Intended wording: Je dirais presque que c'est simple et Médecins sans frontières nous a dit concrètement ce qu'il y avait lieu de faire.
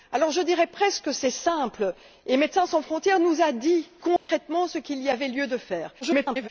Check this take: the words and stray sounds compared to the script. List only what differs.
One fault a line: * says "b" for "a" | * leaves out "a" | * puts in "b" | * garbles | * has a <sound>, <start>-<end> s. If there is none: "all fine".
* has a dropout, 4.2-4.3 s
* garbles